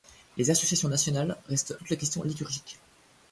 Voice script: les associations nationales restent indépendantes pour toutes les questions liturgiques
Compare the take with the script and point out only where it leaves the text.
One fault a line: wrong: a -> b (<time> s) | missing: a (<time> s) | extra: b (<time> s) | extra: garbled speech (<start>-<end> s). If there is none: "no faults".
missing: indépendantes pour (1.8 s)